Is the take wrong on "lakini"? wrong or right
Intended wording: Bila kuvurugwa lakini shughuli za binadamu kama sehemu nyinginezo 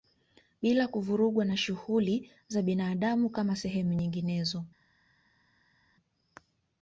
wrong